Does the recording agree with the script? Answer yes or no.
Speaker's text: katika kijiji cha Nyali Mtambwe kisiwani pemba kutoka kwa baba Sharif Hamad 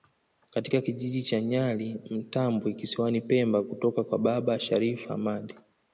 yes